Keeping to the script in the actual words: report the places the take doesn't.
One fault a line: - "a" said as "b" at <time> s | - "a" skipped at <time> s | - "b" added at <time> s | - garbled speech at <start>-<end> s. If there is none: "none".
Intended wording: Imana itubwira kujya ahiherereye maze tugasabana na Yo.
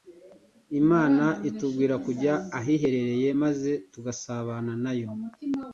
none